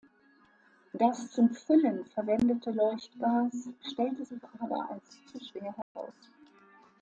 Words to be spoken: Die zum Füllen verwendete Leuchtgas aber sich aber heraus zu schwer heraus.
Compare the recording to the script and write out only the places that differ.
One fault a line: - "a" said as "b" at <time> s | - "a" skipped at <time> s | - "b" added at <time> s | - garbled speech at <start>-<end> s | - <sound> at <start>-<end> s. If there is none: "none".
- "Die" said as "Das" at 0.9 s
- "aber" said as "stellte" at 3.8 s
- "heraus" said as "als" at 4.9 s
- dropout at 5.8-6.0 s